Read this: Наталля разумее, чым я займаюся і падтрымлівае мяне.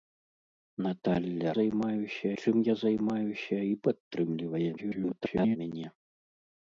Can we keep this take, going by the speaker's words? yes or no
no